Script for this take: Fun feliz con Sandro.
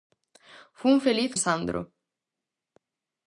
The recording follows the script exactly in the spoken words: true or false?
false